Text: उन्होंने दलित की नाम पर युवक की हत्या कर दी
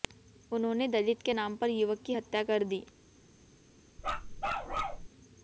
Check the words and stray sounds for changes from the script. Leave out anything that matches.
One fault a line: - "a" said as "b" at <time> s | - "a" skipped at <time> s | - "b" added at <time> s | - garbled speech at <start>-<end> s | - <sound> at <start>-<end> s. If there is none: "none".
- "की" said as "के" at 1.2 s
- bark at 4.0-5.1 s